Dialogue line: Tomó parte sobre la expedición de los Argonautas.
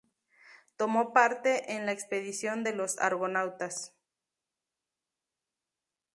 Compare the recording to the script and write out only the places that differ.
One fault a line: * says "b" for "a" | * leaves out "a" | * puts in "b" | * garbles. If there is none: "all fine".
* says "en" for "sobre"